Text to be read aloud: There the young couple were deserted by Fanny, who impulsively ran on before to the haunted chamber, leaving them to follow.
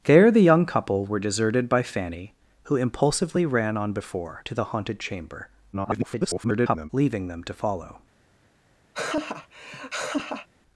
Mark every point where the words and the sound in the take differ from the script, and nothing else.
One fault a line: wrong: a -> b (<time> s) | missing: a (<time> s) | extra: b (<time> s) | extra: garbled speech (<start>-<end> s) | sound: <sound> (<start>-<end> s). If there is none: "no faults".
extra: garbled speech (5.7-6.9 s)
sound: laugh (8.9-10.5 s)